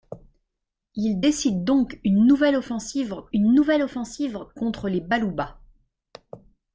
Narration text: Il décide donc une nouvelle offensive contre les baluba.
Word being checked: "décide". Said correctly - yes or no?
yes